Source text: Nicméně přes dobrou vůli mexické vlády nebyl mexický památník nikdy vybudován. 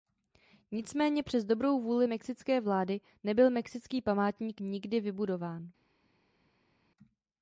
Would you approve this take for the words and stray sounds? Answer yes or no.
yes